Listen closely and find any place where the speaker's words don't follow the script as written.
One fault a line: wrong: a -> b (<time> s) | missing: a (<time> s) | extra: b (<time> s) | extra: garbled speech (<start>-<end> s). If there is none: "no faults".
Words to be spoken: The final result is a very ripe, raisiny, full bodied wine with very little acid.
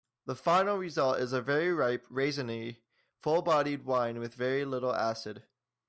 no faults